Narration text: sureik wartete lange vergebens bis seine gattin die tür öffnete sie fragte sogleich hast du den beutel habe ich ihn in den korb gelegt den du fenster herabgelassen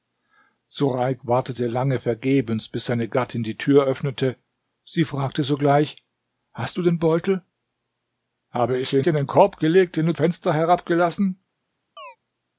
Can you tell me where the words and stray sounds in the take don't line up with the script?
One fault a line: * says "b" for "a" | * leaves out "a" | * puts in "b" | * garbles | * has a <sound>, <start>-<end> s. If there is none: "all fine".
* has a chirp, 12.0-12.2 s